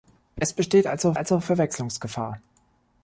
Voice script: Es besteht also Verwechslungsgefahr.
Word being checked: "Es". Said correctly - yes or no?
yes